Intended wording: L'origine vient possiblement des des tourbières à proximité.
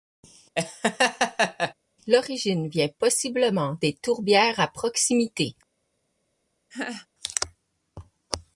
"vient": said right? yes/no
yes